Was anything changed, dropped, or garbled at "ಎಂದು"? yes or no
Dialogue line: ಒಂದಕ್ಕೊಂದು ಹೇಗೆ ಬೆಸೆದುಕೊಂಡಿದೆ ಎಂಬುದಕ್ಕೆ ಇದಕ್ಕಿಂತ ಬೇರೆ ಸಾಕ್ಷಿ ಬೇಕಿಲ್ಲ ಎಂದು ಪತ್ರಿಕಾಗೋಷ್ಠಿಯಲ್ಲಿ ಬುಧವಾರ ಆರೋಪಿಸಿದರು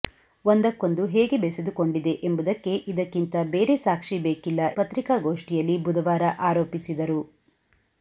yes